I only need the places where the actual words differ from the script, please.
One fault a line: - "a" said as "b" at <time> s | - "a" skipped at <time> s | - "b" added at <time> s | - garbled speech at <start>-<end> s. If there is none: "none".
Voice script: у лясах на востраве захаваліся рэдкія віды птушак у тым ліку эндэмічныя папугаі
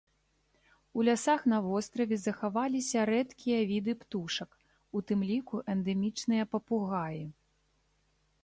none